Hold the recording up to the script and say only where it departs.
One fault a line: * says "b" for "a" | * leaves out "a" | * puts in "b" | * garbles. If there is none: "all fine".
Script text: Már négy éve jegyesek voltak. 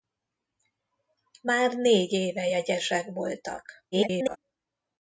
* garbles